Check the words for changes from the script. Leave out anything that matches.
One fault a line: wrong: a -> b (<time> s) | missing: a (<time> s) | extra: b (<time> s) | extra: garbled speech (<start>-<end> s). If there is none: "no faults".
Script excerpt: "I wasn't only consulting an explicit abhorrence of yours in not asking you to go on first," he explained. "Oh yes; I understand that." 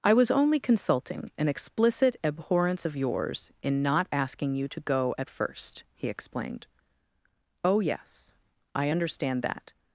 wrong: wasn't -> was (0.1 s)
wrong: on -> at (5.2 s)